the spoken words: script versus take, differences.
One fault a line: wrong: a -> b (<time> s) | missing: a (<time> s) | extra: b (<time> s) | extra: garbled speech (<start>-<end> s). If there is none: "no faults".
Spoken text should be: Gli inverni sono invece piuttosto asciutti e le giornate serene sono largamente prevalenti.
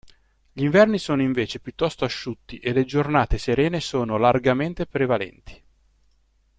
no faults